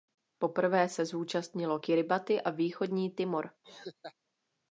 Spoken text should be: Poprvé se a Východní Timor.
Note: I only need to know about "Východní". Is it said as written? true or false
true